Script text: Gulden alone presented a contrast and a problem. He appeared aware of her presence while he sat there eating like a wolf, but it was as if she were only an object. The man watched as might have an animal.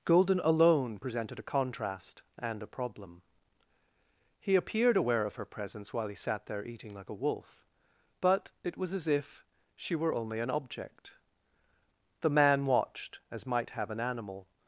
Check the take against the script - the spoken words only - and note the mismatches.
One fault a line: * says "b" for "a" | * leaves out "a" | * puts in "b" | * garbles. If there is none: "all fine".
all fine